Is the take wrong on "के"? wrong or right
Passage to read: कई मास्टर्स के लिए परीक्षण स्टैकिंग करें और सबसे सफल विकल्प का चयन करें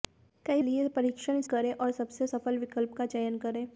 wrong